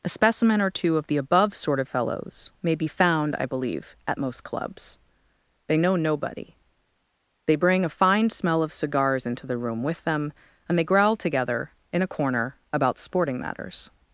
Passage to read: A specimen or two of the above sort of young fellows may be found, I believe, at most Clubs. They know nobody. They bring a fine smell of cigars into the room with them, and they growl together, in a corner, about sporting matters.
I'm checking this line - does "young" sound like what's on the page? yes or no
no